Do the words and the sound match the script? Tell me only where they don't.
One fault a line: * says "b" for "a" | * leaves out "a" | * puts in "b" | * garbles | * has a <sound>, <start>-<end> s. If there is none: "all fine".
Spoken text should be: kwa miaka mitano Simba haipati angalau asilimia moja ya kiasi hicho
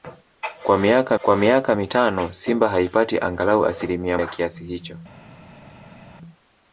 * puts in "kwa miaka"
* leaves out "moja"